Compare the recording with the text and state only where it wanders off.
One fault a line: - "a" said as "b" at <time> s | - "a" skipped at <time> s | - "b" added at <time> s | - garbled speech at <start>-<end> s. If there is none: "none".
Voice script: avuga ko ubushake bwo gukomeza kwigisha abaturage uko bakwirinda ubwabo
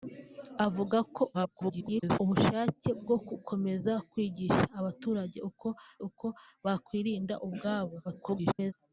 - garbled speech at 1.3-2.2 s
- "uko" added at 6.1 s
- garbled speech at 8.0-8.7 s